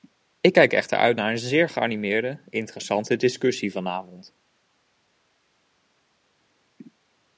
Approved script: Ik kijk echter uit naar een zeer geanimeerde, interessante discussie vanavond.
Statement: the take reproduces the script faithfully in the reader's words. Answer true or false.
true